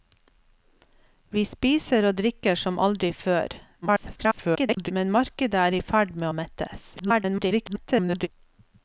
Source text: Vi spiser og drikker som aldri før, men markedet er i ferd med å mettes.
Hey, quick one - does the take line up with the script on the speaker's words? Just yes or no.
no